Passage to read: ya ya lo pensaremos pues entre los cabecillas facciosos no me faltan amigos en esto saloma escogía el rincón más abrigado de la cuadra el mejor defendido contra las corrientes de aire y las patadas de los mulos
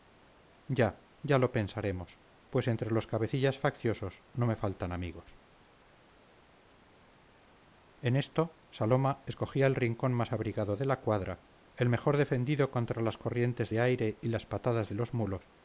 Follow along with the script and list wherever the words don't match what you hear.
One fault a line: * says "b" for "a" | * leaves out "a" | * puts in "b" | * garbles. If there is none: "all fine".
all fine